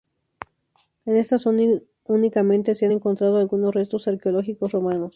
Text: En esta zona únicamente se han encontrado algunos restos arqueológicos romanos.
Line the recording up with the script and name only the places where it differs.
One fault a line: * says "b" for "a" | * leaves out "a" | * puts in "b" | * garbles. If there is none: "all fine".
all fine